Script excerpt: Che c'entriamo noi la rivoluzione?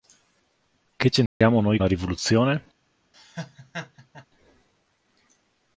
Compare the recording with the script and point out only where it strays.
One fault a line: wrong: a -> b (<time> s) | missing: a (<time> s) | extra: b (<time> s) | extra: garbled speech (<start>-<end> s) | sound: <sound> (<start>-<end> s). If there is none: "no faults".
sound: dropout (1.3-1.4 s)
sound: laugh (3.1-4.3 s)